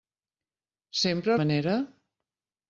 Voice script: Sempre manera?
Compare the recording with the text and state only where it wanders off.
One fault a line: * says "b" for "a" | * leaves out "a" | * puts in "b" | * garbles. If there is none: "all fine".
all fine